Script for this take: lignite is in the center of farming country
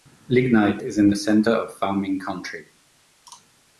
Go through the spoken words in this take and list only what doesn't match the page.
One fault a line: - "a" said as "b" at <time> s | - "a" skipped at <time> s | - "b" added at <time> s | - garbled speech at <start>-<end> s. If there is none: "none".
none